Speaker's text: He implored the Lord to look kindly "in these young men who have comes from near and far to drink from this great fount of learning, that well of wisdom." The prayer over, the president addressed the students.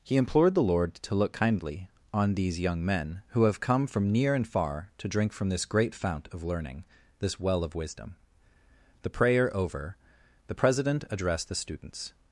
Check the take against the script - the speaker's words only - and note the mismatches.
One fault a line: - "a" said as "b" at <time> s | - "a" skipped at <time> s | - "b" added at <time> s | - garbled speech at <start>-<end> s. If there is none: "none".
- "in" said as "on" at 2.1 s
- "comes" said as "come" at 3.6 s
- "that" said as "this" at 7.2 s